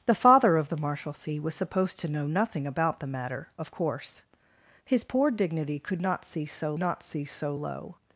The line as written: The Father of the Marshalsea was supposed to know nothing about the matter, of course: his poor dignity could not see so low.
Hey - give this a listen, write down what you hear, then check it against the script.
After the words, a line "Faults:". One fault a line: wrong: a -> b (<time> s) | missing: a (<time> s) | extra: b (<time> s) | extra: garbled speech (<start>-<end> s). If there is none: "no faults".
The Father of the Marshalsea was supposed to know nothing about the matter, of course: his poor dignity could not see so not see so low.
Faults:
extra: not see so (6.8 s)